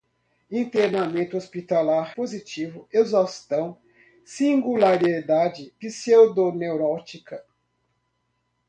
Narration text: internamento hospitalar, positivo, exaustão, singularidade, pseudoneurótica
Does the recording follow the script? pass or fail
pass